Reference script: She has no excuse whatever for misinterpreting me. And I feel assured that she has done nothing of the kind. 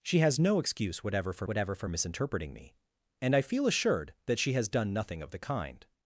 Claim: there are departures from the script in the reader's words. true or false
true